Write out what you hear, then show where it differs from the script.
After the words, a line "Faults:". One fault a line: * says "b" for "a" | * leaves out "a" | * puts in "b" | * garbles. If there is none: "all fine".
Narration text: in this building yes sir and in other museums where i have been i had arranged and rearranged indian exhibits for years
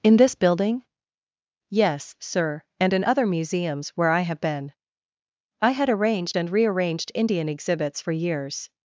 in this building yes sir and in other museums where i have been i had arranged and rearranged indian exhibits for years
Faults:
all fine